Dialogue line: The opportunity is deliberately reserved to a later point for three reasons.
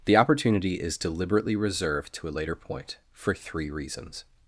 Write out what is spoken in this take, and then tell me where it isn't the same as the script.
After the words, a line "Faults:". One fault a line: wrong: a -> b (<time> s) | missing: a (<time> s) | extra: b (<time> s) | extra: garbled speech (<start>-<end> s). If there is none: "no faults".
The opportunity is deliberately reserved to a later point for three reasons.
Faults:
no faults